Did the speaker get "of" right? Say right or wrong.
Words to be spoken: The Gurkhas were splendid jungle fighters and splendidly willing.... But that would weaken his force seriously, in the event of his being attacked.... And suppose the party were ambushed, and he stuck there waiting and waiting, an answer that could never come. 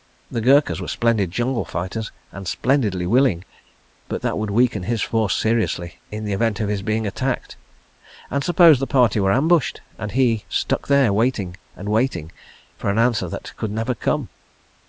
right